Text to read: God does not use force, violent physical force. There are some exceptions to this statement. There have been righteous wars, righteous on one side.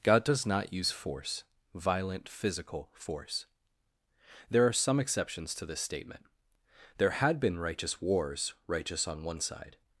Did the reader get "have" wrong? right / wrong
wrong